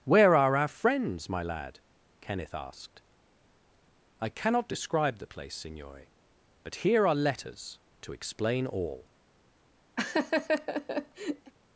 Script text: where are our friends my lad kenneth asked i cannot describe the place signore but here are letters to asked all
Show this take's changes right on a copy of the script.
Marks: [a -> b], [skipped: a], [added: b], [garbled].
where are our friends my lad kenneth asked i cannot describe the place signore but here are letters to [asked -> explain] all